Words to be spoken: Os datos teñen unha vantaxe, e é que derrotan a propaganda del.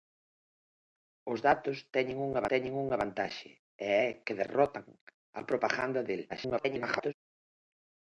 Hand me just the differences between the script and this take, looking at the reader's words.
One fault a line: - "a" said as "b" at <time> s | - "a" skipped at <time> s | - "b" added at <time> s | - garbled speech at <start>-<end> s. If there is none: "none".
- "teñen unha" added at 2.5 s
- garbled speech at 6.3-7.1 s